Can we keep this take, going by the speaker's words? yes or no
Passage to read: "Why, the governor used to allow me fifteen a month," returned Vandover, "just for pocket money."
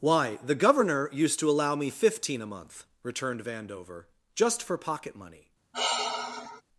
yes